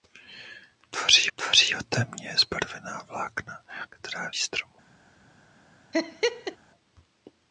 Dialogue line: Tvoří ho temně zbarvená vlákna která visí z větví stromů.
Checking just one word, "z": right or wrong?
wrong